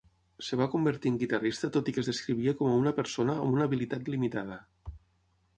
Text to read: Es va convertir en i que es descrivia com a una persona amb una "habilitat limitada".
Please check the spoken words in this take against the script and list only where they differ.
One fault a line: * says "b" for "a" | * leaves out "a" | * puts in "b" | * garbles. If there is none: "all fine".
* puts in "guitarrista tot"